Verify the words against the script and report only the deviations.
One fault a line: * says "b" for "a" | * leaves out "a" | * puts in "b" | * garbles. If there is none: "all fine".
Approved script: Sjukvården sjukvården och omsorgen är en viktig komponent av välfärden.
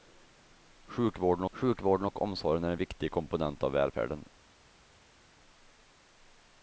all fine